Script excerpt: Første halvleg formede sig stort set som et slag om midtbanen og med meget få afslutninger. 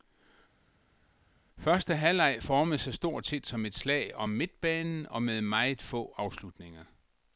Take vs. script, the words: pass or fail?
pass